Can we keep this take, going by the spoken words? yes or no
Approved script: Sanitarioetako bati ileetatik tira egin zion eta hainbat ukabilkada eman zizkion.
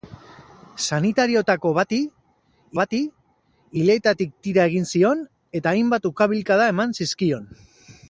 no